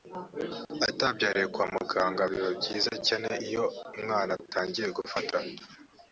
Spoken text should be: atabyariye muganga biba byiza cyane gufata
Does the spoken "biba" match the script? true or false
true